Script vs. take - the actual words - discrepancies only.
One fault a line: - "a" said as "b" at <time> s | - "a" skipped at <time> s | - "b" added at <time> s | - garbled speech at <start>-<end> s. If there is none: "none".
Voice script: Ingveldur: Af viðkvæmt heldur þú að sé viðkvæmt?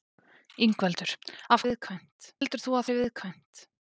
none